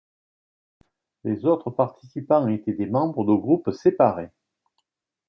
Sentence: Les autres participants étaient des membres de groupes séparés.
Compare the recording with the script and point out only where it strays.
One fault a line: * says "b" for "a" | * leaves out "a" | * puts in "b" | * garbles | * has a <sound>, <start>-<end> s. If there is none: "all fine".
all fine